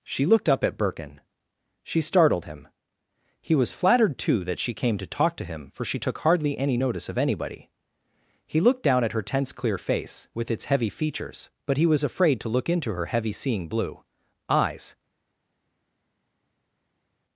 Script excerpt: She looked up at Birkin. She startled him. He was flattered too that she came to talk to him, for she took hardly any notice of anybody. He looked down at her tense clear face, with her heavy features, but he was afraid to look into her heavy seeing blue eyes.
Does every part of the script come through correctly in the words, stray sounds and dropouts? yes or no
no